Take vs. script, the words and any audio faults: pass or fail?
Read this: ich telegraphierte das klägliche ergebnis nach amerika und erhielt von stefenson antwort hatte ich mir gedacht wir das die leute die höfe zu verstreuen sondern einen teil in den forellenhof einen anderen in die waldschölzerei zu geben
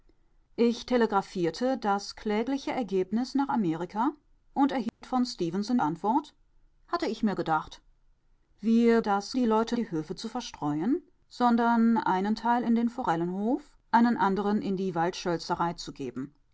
fail